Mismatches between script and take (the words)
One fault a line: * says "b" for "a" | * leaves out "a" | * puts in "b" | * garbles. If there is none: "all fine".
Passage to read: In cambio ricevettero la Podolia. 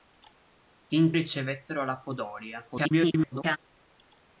* leaves out "cambio"
* garbles